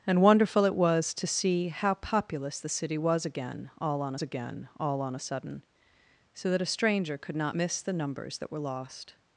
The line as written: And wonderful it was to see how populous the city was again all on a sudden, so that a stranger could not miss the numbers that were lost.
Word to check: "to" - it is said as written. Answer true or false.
true